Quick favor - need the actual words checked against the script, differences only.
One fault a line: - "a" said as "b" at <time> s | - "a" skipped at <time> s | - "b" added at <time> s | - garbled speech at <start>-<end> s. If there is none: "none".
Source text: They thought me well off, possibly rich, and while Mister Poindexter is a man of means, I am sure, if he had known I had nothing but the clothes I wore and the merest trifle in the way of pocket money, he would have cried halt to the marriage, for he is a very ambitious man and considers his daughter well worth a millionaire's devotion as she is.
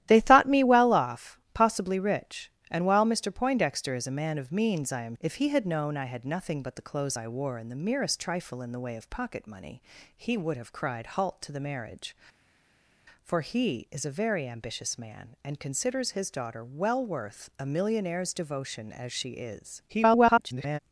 - "sure" skipped at 5.2 s
- garbled speech at 19.9-20.8 s